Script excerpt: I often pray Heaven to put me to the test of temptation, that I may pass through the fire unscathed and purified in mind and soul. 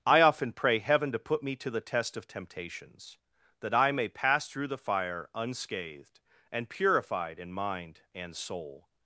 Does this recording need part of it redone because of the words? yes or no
yes